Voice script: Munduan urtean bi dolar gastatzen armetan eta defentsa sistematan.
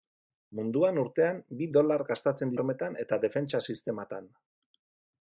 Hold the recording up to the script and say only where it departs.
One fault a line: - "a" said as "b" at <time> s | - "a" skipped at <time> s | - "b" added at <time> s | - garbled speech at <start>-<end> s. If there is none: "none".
none